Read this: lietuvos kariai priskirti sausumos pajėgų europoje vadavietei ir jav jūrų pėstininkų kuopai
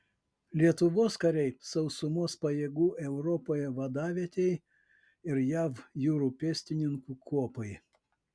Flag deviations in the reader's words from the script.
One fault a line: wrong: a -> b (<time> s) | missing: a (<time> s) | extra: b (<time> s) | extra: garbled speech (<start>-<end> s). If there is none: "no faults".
missing: priskirti (1.5 s)